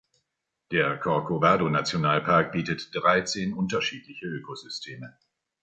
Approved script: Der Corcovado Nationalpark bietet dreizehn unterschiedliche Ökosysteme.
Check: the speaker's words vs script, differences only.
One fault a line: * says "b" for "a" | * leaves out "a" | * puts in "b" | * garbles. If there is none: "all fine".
all fine